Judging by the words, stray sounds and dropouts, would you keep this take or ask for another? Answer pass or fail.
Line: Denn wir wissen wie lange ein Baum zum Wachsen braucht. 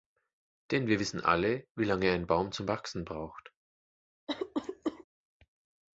fail